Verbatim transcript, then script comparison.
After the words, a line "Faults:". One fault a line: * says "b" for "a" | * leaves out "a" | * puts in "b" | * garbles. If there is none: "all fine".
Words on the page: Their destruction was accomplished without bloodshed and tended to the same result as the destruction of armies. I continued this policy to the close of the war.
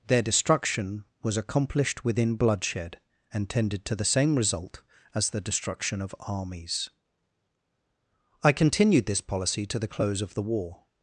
Their destruction was accomplished within bloodshed and tended to the same result as the destruction of armies. I continued this policy to the close of the war.
Faults:
* says "within" for "without"